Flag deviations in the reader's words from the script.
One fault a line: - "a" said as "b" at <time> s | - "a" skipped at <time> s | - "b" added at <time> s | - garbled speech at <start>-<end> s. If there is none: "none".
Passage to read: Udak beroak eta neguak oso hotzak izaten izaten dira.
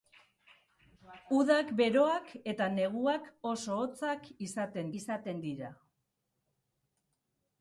none